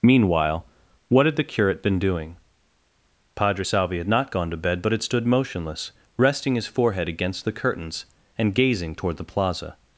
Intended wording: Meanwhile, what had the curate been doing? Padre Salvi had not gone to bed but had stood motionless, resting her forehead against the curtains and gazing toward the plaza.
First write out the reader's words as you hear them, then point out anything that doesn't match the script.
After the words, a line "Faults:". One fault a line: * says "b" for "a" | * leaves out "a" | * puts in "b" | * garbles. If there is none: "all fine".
Meanwhile, what had the curate been doing? Padre Salvi had not gone to bed but had stood motionless, resting his forehead against the curtains and gazing toward the plaza.
Faults:
* says "his" for "her"